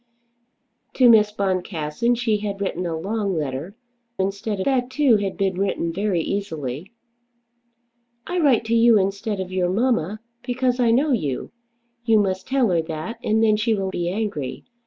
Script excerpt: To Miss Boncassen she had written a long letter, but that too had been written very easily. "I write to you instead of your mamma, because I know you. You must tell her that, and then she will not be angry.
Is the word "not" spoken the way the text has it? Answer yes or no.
no